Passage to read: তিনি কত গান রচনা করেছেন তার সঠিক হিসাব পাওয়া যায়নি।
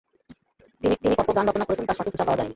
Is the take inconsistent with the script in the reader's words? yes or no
yes